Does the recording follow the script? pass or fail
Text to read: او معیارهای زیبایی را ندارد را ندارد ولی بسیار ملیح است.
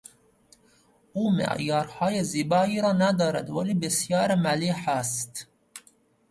fail